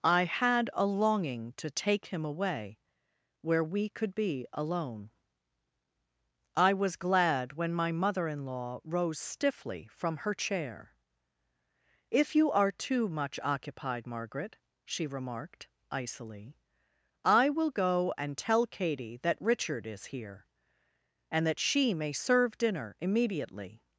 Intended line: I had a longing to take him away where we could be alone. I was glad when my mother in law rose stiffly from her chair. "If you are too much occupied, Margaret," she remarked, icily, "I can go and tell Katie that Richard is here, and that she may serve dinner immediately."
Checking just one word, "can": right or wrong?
wrong